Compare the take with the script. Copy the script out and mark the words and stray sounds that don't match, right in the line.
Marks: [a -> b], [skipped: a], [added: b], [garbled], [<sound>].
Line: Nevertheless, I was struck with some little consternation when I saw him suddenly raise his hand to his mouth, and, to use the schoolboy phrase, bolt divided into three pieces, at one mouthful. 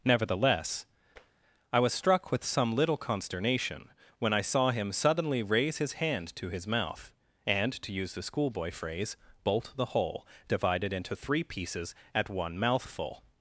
Nevertheless, [tap] I was struck with some little consternation when I saw him suddenly raise his hand to his mouth, and, to use the schoolboy phrase, bolt [added: the whole] divided into three pieces, at one mouthful.